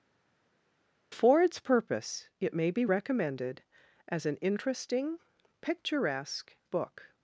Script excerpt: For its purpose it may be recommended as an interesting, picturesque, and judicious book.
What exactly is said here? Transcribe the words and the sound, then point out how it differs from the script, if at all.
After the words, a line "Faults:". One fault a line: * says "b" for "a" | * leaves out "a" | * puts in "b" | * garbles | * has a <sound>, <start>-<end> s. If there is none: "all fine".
For its purpose it may be recommended as an interesting, picturesque, book.
Faults:
* leaves out "and judicious"